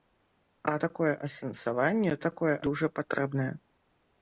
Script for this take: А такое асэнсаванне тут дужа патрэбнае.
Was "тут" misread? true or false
true